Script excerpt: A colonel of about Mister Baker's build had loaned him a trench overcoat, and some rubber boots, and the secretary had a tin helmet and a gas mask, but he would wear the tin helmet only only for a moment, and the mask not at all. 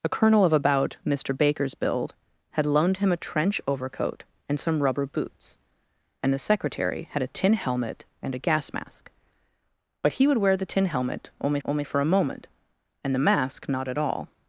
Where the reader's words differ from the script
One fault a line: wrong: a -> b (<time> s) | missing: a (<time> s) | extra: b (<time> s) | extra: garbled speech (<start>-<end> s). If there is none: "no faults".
no faults